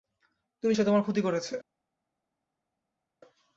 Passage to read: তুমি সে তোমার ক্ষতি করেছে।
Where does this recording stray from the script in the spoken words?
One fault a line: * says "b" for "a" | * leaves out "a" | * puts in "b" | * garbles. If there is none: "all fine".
all fine